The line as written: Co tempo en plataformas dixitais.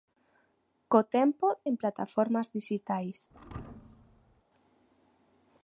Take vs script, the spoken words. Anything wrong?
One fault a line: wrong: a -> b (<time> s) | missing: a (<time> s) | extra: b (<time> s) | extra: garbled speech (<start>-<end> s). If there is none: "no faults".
no faults